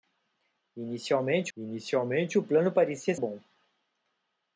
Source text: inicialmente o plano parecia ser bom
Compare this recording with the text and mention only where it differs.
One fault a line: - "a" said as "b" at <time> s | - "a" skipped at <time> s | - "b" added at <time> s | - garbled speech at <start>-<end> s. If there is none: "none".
- "inicialmente" added at 1.6 s
- "ser" skipped at 3.2 s